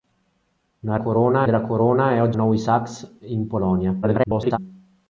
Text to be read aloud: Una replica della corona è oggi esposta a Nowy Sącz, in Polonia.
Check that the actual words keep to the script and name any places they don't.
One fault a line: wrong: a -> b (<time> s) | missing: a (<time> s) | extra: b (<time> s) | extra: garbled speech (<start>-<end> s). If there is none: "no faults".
wrong: replica -> corona (1.0 s)
missing: esposta (2.4 s)
extra: garbled speech (4.0-4.6 s)